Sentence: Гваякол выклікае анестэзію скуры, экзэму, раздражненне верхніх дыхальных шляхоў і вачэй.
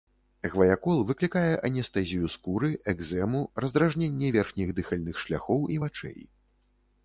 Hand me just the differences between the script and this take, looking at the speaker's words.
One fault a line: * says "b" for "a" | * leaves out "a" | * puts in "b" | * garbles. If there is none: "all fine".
all fine